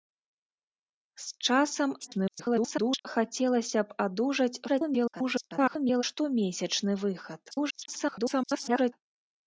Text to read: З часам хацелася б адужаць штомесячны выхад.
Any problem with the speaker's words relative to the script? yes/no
yes